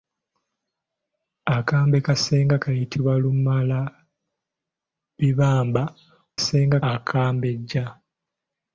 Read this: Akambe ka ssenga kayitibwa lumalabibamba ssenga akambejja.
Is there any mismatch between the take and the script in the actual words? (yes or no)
no